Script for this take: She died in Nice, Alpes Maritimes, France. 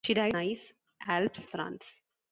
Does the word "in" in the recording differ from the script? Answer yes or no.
yes